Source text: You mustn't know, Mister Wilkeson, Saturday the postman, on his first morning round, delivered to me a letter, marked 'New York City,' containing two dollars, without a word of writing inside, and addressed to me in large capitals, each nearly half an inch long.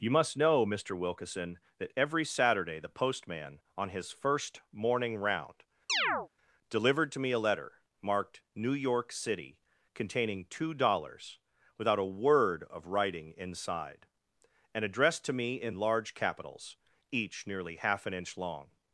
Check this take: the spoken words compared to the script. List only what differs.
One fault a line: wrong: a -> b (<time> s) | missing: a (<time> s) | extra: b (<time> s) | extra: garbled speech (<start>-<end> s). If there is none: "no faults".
wrong: mustn't -> must (0.1 s)
extra: that every (1.8 s)